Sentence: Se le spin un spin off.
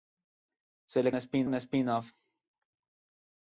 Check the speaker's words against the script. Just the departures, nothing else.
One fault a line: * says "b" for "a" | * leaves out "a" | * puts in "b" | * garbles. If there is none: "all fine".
all fine